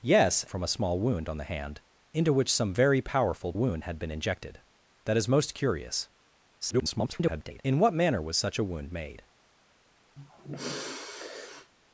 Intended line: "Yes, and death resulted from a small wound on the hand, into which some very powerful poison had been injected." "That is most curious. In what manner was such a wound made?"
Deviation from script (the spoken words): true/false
true